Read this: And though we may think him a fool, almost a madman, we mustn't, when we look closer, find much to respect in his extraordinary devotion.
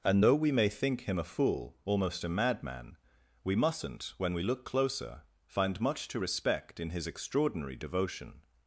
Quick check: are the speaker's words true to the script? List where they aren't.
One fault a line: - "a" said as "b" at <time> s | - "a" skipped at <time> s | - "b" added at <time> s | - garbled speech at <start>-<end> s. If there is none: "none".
none